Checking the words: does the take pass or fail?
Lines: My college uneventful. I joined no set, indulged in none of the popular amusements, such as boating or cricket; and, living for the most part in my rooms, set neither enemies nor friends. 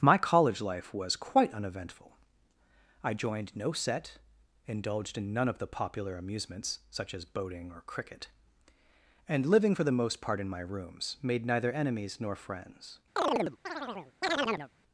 fail